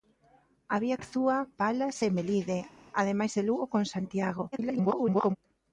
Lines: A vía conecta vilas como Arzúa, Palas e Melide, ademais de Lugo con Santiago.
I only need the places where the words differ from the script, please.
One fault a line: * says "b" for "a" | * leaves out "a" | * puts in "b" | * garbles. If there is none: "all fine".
* leaves out "conecta vilas como"
* garbles